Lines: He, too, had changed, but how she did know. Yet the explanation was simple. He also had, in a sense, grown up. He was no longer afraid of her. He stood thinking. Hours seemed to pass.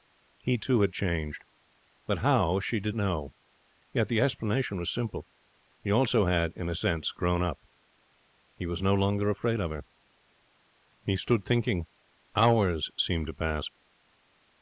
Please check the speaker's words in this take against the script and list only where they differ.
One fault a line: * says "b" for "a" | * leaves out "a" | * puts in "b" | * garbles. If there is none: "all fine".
all fine